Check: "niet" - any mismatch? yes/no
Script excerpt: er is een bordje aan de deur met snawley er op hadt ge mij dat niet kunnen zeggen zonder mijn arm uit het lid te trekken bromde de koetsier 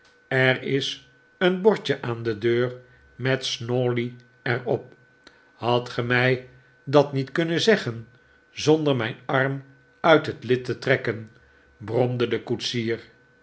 no